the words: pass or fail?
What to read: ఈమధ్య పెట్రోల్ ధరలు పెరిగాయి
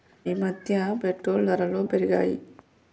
pass